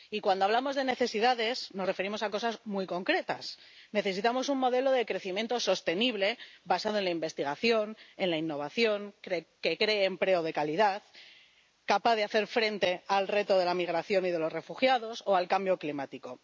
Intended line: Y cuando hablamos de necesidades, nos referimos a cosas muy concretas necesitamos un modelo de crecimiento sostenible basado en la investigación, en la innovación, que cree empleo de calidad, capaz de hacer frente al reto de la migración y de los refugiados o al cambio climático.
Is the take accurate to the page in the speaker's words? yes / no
yes